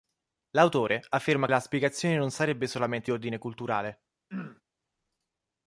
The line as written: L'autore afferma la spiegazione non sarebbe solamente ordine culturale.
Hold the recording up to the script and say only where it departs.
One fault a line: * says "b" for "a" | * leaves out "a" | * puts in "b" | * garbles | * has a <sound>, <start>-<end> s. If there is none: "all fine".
* has a throat clearing, 4.3-4.6 s